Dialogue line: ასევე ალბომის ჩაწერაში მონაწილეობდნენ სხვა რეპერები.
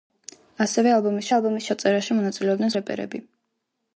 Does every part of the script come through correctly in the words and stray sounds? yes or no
no